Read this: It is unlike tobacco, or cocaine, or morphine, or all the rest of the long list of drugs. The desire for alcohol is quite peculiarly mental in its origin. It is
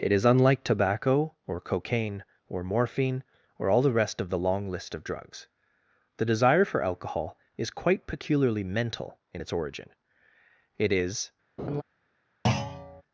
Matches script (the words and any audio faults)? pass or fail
fail